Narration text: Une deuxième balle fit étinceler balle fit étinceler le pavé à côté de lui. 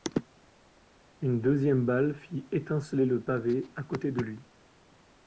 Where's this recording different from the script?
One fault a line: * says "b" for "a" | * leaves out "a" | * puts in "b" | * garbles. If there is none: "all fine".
* leaves out "balle fit étinceler"